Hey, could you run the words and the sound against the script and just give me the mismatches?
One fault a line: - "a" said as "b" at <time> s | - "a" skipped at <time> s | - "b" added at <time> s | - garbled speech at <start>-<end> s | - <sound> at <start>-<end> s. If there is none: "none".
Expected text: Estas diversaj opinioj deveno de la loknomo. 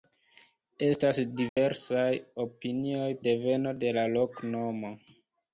- dropout at 1.5-1.6 s